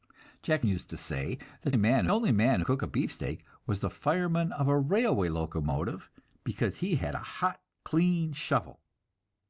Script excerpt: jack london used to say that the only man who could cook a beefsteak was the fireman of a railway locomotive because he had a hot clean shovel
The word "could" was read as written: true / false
false